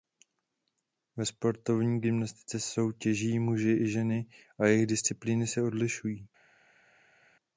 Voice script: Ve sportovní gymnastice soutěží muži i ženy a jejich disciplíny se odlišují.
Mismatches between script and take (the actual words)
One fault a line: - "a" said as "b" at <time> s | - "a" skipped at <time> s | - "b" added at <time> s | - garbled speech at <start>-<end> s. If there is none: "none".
none